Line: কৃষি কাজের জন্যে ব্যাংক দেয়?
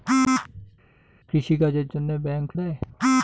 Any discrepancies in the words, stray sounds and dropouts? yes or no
no